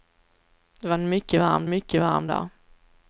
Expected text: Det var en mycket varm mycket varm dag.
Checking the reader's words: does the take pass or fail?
pass